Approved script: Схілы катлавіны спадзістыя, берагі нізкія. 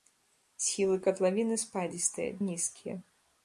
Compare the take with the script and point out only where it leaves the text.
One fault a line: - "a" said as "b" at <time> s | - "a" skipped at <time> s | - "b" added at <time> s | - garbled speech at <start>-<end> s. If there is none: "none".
- "берагі" skipped at 2.3 s